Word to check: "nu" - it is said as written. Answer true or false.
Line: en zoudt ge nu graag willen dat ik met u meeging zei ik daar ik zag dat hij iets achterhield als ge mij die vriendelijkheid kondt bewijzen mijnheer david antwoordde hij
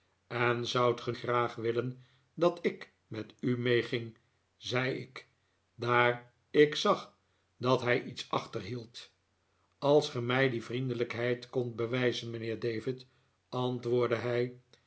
false